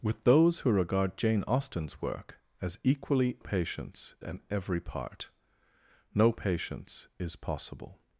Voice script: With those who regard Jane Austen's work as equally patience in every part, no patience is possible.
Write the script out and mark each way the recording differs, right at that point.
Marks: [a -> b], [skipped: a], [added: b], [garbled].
With those who regard Jane Austen's work as equally patience in every part, no patience is possible.